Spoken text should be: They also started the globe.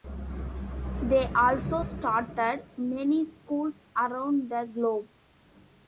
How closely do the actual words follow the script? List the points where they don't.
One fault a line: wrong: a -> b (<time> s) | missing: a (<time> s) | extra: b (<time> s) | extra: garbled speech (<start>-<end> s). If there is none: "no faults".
extra: many schools around (2.8 s)